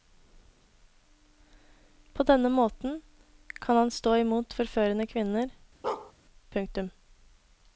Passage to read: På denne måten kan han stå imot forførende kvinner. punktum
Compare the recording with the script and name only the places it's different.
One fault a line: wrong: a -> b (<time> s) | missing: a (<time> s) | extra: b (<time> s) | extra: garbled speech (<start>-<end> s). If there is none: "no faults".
no faults